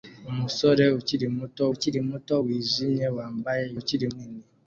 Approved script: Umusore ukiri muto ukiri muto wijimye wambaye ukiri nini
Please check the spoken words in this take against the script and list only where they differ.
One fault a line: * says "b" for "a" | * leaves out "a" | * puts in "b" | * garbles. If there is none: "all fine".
all fine